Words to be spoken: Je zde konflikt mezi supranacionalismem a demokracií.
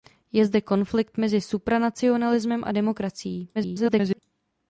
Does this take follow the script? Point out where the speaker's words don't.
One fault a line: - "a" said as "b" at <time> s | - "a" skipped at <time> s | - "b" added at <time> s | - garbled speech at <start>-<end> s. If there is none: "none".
- garbled speech at 3.5-4.2 s